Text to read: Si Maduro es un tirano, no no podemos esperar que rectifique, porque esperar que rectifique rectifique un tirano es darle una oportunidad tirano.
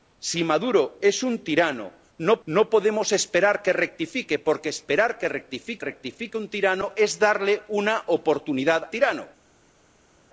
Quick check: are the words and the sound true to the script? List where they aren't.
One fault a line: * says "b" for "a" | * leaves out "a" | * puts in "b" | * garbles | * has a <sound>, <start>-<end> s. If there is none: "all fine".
all fine